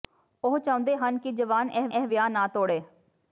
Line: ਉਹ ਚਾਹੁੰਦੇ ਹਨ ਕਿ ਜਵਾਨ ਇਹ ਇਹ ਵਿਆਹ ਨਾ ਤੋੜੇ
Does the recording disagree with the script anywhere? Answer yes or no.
no